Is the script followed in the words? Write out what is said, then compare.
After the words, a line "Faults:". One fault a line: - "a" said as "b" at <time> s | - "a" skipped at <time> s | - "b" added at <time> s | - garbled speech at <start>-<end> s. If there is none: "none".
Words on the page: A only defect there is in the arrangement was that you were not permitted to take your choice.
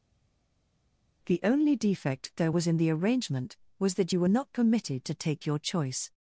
The only defect there was in the arrangement was that you were not permitted to take your choice.
Faults:
- "A" said as "The" at 1.3 s
- "is" said as "was" at 2.5 s